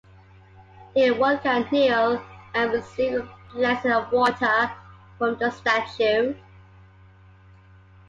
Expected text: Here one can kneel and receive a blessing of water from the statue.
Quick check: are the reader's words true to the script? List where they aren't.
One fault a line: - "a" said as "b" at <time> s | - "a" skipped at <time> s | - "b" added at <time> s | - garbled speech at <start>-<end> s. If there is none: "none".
none